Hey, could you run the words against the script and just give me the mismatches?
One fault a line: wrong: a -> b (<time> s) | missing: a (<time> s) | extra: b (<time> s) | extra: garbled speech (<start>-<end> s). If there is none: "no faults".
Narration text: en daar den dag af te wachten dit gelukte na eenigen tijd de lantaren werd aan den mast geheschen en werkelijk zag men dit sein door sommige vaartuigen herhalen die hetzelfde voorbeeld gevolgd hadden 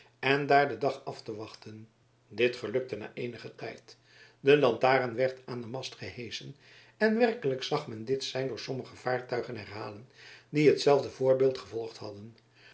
no faults